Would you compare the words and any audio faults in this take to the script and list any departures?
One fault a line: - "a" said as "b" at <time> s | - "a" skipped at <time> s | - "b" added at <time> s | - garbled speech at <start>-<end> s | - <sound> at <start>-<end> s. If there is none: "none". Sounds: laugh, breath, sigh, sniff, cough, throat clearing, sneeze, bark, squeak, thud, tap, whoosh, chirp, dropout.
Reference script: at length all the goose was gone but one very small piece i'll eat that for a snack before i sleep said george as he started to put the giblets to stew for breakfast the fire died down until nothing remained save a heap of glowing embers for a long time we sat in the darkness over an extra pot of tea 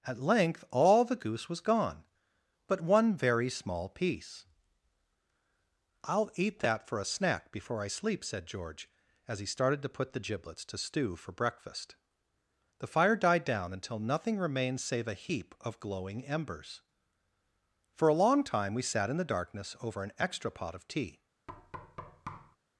- thud at 21.5-22.6 s